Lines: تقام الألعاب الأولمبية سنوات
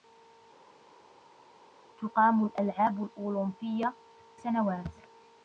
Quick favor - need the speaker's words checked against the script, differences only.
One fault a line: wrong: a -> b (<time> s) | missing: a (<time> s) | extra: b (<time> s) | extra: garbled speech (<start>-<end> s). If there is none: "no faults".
no faults